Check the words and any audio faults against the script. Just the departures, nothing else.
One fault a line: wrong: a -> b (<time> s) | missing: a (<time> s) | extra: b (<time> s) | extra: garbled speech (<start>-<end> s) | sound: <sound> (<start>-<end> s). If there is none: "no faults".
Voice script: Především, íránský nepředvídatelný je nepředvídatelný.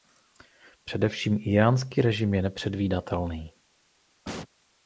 wrong: nepředvídatelný -> režim (2.0 s)
sound: sneeze (4.2-4.5 s)